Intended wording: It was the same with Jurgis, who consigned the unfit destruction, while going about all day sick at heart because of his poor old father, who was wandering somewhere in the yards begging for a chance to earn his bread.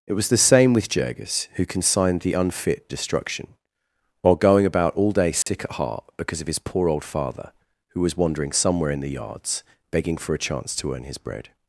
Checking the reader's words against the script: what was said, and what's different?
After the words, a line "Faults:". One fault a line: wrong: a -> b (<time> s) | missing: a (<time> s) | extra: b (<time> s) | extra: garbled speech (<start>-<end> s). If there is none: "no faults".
It was the same with Jurgis, who consigned the unfit destruction, while going about all day sick at heart because of his poor old father, who was wandering somewhere in the yards begging for a chance to earn his bread.
Faults:
no faults